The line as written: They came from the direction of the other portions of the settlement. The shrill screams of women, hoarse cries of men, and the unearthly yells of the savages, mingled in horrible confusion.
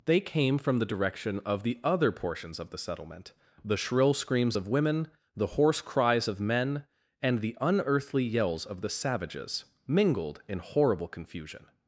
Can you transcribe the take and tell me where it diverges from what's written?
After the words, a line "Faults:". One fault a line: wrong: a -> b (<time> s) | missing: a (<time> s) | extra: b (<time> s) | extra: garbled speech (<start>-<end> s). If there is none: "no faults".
They came from the direction of the other portions of the settlement. The shrill screams of women, the hoarse cries of men, and the unearthly yells of the savages, mingled in horrible confusion.
Faults:
extra: the (5.3 s)